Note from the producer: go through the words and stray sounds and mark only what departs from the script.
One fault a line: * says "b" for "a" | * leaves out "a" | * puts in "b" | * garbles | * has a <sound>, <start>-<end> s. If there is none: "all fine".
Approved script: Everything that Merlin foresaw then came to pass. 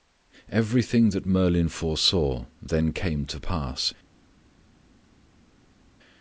all fine